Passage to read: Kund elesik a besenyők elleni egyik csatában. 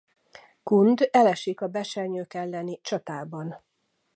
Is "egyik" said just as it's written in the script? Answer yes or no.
no